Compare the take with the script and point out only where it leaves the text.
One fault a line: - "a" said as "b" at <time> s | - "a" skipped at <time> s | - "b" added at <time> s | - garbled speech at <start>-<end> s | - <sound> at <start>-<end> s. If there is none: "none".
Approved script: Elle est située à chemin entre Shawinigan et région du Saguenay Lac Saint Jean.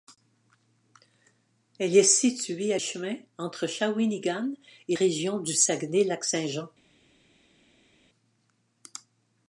none